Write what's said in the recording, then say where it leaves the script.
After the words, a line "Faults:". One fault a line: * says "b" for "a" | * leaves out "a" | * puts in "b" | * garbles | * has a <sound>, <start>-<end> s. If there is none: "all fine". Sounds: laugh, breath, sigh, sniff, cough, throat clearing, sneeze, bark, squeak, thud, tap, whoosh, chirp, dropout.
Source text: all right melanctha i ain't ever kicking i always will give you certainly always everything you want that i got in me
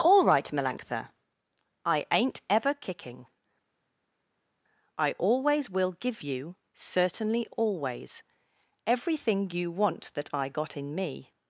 all right melanctha i ain't ever kicking i always will give you certainly always everything you want that i got in me
Faults:
all fine